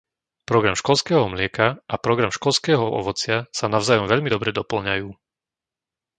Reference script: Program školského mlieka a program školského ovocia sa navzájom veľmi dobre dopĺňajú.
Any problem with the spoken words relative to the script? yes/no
no